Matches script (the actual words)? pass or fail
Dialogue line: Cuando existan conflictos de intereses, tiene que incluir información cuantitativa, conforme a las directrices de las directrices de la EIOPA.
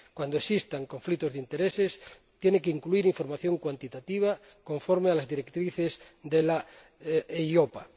fail